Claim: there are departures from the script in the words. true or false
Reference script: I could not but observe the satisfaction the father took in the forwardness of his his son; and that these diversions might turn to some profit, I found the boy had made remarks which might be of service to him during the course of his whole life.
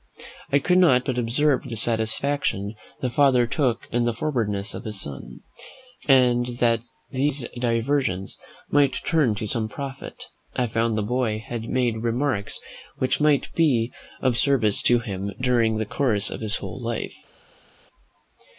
true